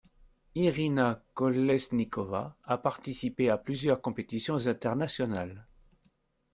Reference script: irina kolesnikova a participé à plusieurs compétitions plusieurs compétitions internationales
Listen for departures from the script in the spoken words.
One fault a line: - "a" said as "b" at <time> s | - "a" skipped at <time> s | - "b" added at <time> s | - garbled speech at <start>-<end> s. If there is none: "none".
- "plusieurs compétitions" skipped at 4.7 s